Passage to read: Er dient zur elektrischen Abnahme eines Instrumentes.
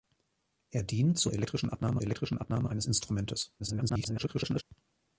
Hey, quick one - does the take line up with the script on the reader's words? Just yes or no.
no